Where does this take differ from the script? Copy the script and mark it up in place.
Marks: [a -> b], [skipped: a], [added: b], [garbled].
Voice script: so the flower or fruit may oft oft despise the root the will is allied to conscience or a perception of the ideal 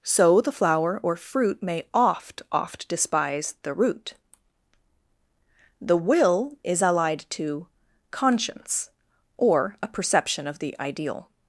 so the flower or fruit may oft oft despise the root the will is allied to conscience or a perception of the ideal